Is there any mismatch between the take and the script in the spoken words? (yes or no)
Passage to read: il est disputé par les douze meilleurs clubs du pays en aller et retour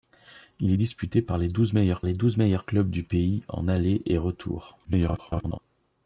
yes